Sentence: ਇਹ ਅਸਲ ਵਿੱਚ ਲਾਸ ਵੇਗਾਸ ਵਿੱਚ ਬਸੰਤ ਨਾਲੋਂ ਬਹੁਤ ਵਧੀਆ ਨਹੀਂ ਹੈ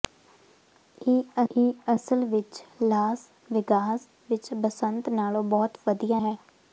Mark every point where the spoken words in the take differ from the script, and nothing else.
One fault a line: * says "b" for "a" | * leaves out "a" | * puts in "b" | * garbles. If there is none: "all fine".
* puts in "ਇਹ"
* leaves out "ਨਹੀਂ"